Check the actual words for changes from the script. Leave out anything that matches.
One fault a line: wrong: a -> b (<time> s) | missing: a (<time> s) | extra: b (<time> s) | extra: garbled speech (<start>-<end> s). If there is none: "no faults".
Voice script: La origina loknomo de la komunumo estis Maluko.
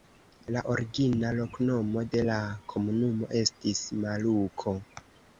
no faults